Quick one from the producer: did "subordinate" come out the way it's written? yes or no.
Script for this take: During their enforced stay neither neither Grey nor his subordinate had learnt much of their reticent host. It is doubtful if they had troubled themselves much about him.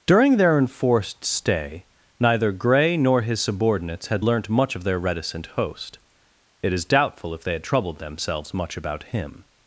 no